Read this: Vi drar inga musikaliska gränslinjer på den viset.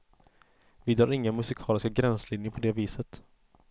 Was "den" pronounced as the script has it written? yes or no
no